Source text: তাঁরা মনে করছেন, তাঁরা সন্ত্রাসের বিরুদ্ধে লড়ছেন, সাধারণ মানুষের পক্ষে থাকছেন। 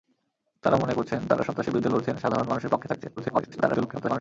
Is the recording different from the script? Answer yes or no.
yes